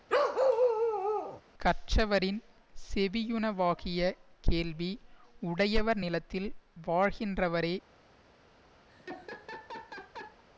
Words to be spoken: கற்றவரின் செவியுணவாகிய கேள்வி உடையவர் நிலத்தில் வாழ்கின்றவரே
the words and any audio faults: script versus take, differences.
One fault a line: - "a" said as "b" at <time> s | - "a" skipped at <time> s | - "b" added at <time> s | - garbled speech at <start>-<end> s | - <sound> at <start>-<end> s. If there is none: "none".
- bark at 0.1-1.4 s
- laugh at 8.9-10.4 s